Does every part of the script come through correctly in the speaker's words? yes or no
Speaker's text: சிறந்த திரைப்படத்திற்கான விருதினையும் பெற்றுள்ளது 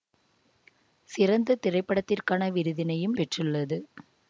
yes